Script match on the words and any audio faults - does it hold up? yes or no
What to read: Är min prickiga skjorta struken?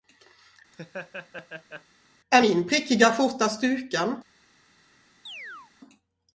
no